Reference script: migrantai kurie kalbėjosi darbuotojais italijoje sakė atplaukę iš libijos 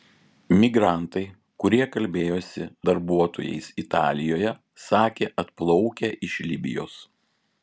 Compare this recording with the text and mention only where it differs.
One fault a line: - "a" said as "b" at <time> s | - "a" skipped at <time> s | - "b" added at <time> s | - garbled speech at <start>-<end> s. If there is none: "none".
none